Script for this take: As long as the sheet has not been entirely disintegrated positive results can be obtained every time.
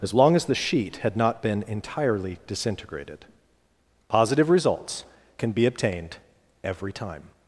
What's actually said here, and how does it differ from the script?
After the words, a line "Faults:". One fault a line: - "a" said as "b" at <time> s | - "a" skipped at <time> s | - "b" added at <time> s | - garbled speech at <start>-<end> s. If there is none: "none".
As long as the sheet had not been entirely disintegrated positive results can be obtained every time.
Faults:
- "has" said as "had" at 1.0 s